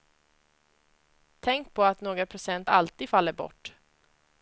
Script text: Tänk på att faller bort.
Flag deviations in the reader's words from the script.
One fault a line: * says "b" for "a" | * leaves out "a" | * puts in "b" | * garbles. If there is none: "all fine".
* puts in "några procent alltid"